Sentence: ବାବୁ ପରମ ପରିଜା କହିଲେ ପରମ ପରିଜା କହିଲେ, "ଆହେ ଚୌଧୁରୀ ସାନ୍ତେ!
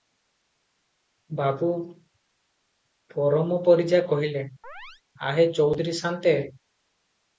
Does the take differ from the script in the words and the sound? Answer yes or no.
yes